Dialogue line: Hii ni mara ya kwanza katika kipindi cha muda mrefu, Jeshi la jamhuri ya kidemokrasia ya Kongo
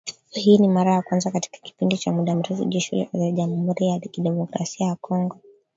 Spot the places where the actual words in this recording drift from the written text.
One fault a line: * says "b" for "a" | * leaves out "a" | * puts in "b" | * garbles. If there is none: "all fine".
all fine